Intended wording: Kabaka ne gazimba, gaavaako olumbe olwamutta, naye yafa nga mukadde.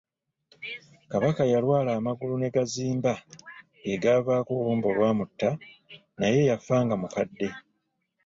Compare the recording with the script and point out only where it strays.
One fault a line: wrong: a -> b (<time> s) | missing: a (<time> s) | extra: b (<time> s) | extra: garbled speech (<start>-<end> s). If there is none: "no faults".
extra: yalwala amagulu (1.5 s)
extra: ge (3.8 s)